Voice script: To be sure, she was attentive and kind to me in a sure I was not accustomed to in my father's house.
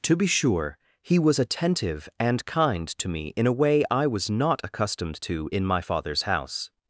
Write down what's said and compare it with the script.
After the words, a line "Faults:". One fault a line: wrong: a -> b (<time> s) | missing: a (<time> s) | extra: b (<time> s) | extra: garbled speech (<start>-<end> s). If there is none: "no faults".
To be sure, he was attentive and kind to me in a way I was not accustomed to in my father's house.
Faults:
wrong: she -> he (1.0 s)
wrong: sure -> way (3.5 s)